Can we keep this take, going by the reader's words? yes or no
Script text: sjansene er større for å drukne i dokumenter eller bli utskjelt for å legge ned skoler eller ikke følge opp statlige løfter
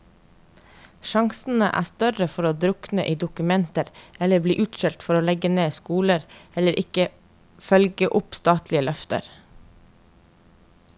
yes